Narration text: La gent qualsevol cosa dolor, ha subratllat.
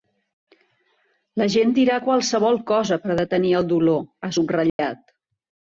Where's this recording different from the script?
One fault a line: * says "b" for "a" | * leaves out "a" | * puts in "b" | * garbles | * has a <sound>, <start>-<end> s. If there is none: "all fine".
* puts in "dirà"
* puts in "per detenir el"
* has a dropout, 4.7-4.8 s